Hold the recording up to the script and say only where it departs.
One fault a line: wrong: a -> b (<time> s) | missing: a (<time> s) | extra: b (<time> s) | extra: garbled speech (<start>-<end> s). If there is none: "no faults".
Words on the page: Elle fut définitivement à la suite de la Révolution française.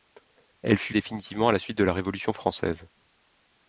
no faults